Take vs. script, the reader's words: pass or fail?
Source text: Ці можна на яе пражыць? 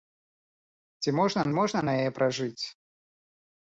fail